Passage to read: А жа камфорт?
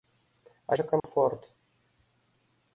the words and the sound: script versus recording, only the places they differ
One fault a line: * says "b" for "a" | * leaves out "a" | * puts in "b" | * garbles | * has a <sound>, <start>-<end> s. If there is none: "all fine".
* has a dropout, 1.0-1.0 s